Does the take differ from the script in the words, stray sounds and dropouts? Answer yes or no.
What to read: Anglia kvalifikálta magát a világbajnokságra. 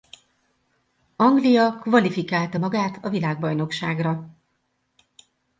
no